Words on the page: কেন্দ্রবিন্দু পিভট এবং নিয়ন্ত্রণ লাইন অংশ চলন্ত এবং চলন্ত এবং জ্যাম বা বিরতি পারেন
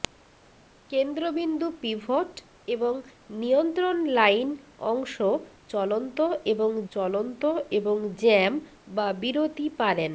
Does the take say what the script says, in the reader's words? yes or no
yes